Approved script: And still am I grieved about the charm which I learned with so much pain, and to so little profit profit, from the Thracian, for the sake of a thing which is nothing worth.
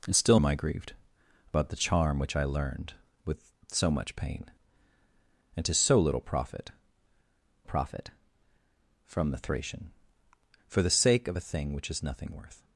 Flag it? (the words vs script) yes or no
no